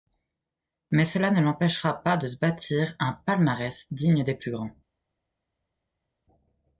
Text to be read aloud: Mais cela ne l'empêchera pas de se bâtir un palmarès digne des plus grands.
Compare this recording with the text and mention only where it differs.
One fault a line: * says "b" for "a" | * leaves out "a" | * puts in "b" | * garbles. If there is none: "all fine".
all fine